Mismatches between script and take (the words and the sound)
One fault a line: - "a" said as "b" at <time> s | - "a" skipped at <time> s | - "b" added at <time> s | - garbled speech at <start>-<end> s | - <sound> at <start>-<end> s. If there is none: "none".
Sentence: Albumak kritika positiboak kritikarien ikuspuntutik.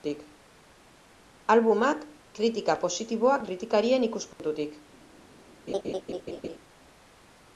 - dropout at 4.3-4.4 s
- laugh at 5.7-6.6 s